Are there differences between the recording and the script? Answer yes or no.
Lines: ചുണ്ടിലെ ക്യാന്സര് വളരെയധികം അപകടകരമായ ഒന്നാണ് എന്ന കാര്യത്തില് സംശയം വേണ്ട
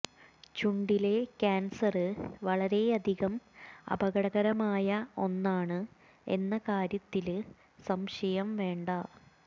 no